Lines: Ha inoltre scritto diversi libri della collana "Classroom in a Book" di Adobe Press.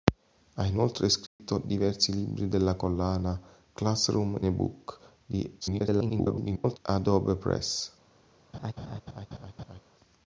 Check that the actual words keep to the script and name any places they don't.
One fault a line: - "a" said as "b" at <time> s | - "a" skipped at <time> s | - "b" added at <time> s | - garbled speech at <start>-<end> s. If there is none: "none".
- "in" skipped at 4.3 s
- garbled speech at 5.6-6.8 s